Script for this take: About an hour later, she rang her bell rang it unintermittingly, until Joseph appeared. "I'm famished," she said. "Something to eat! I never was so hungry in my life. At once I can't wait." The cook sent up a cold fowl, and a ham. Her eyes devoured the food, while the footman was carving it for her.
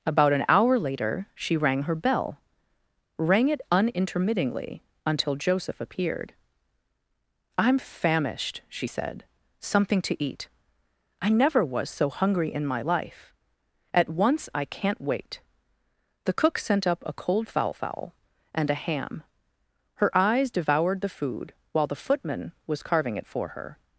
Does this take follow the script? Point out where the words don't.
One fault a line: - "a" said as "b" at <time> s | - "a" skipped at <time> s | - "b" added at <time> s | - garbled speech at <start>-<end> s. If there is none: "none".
- "fowl" added at 17.7 s